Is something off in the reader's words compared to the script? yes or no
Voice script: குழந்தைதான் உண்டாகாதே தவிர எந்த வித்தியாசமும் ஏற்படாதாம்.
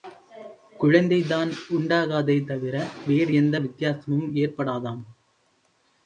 yes